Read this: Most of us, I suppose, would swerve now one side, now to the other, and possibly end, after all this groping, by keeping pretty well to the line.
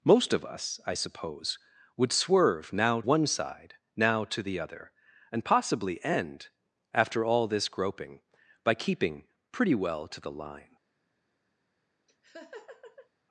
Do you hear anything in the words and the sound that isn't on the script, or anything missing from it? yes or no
yes